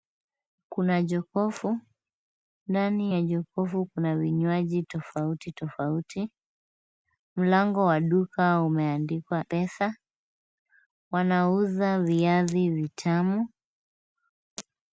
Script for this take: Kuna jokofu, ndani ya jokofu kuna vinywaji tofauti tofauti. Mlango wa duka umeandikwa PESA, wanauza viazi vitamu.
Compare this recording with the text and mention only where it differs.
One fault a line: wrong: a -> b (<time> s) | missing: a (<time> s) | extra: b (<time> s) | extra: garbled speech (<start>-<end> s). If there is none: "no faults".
no faults